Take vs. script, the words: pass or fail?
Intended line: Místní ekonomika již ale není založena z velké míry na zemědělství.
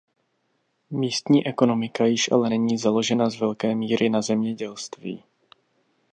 pass